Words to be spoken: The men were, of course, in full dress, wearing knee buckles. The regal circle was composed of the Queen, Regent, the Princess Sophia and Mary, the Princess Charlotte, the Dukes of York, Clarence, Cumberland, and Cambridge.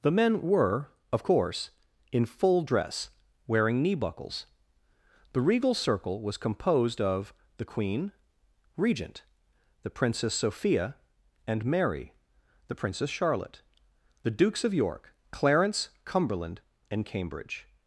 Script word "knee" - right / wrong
right